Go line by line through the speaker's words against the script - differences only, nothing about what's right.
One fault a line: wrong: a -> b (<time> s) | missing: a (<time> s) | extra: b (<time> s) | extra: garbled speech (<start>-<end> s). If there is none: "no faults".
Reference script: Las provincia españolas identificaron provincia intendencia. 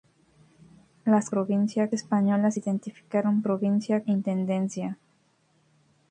no faults